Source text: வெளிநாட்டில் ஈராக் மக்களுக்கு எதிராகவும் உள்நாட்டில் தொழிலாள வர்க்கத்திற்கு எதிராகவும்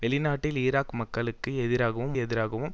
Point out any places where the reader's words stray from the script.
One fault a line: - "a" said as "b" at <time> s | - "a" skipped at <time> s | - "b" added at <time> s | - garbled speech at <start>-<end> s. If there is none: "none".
- "உள்நாட்டில் தொழிலாள வர்க்கத்திற்கு" skipped at 2.1 s